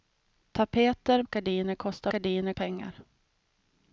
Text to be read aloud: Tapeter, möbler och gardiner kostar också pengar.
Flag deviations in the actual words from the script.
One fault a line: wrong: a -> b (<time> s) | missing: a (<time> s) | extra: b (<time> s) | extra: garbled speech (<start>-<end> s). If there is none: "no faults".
missing: möbler (1.2 s)
wrong: också -> gardiner (2.1 s)